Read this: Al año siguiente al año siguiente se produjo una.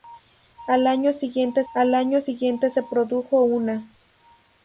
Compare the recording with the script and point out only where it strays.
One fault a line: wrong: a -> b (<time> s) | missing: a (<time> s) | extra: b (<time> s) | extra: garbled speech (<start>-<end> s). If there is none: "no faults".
no faults